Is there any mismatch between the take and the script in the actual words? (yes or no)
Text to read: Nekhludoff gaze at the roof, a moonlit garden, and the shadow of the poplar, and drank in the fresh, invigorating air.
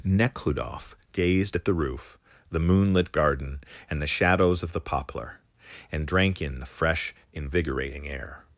yes